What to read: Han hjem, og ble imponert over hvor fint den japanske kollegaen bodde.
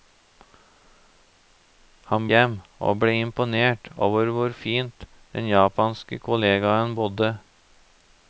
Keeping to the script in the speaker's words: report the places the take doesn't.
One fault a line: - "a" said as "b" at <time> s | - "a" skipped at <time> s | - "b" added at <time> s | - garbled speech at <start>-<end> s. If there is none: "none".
none